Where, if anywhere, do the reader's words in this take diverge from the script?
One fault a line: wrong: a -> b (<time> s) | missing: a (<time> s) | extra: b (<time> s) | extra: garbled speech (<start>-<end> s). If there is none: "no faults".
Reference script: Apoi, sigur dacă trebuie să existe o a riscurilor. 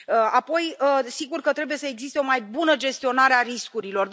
wrong: dacă -> că (1.4 s)
extra: mai bună gestionare (2.2 s)